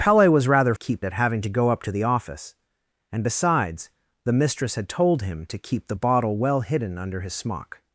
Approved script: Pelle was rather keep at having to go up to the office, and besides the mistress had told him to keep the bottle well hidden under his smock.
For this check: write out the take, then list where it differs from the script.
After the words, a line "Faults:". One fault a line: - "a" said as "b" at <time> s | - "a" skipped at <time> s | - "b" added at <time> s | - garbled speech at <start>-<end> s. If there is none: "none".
Pelle was rather keep at having to go up to the office, and besides the mistress had told him to keep the bottle well hidden under his smock.
Faults:
none